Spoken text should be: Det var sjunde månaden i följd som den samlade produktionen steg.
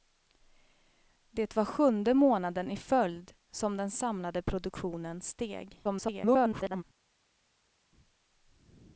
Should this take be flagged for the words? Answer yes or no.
yes